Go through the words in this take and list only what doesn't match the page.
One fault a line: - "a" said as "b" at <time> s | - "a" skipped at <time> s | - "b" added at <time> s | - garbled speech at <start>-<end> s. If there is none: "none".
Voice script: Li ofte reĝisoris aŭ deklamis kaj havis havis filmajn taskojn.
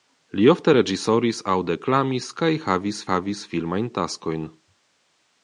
none